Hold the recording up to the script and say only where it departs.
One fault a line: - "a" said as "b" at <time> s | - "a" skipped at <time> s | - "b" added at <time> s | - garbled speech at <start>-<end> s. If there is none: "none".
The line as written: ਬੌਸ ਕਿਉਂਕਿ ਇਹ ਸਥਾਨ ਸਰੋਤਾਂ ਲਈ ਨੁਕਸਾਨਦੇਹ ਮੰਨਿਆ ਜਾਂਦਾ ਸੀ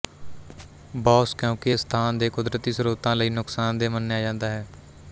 - "ਦੇ ਕੁਦਰਤੀ" added at 2.2 s
- "ਸੀ" said as "ਹੈ" at 4.5 s